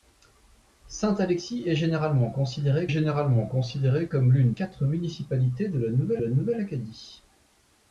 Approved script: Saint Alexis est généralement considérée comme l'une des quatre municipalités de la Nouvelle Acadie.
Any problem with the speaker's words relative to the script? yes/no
yes